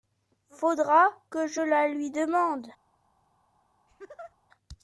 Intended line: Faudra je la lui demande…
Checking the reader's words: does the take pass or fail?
fail